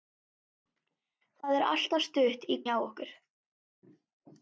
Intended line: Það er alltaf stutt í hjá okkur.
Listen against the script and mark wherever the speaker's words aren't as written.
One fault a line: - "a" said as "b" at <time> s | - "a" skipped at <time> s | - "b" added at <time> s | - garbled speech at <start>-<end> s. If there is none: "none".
none